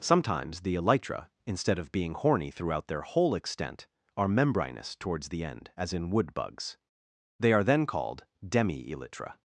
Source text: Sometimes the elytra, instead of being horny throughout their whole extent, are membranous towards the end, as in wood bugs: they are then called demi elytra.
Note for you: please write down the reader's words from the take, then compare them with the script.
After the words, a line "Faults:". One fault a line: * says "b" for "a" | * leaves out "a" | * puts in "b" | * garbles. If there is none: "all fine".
Sometimes the elytra, instead of being horny throughout their whole extent, are membranous towards the end, as in wood bugs: they are then called demi elytra.
Faults:
all fine